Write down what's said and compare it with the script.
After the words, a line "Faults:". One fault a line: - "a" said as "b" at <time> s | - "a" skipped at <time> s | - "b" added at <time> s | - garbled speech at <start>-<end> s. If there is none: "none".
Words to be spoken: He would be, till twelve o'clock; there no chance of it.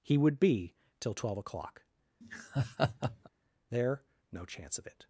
He would be, till twelve o'clock; there no chance of it.
Faults:
none